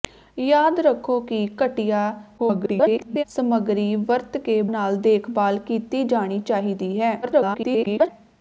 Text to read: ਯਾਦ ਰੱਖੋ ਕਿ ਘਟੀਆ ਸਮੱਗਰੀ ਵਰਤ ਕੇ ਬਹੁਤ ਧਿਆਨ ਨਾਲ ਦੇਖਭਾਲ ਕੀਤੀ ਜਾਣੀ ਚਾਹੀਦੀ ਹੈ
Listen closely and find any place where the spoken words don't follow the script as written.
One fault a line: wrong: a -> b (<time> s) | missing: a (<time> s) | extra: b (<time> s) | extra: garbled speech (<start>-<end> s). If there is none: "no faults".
extra: garbled speech (2.4-3.2 s)
missing: ਬਹੁਤ ਧਿਆਨ (4.6 s)
extra: garbled speech (7.2-8.1 s)